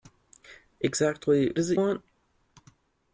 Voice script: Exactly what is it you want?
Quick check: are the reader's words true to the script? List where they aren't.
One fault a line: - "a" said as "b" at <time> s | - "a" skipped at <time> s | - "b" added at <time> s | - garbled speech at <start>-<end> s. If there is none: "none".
- "what" skipped at 1.5 s
- "you" skipped at 1.8 s